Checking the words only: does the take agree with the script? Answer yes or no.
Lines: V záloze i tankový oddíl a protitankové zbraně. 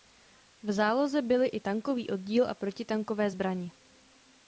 no